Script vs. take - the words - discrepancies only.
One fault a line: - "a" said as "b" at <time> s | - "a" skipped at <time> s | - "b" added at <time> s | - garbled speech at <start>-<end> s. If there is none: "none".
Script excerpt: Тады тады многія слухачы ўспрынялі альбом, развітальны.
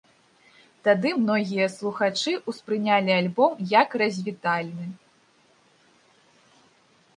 - "тады" skipped at 1.1 s
- "як" added at 3.7 s